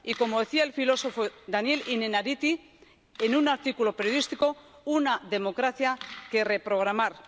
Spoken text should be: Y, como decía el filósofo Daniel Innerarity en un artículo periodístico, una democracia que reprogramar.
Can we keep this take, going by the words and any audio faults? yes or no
yes